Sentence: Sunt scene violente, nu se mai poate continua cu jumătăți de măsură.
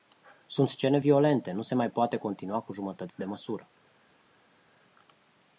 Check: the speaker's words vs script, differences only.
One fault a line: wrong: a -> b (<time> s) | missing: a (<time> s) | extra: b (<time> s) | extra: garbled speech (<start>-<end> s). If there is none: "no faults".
no faults